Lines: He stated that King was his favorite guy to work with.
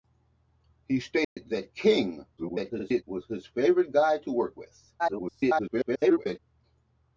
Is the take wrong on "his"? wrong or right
right